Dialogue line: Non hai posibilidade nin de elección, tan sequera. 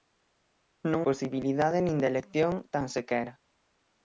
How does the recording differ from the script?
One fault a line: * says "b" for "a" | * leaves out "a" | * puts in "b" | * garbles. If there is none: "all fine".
* leaves out "hai"